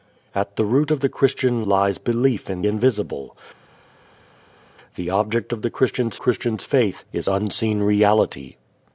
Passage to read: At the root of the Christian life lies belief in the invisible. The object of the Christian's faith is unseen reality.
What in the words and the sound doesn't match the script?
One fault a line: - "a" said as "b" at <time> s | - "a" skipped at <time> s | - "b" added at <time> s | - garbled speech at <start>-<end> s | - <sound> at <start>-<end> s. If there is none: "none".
- "life" skipped at 1.7 s
- "the" skipped at 2.6 s
- "Christian's" added at 6.1 s